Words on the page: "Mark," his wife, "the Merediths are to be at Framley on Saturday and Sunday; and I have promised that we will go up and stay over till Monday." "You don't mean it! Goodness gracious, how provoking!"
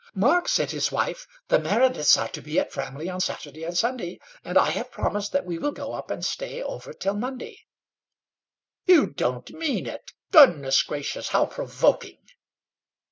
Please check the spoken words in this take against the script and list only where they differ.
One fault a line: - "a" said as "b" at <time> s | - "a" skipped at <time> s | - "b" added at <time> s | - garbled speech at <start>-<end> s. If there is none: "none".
- "said" added at 0.5 s